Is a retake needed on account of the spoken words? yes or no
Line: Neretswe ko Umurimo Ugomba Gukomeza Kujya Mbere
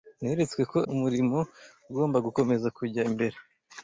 no